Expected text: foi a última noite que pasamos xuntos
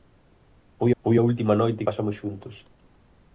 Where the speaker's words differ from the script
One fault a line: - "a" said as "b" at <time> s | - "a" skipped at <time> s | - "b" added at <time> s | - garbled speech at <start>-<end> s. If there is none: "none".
- "foi" added at 1.0 s
- "que" skipped at 1.8 s